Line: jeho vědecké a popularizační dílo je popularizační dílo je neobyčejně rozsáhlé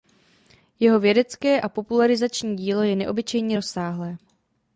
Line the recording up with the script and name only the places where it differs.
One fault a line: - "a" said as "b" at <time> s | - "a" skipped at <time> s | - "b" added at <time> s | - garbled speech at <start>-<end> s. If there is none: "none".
- "popularizační dílo je" skipped at 2.9 s